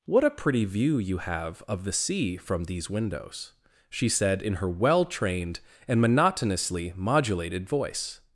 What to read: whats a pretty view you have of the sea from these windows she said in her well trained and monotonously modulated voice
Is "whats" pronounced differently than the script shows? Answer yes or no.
yes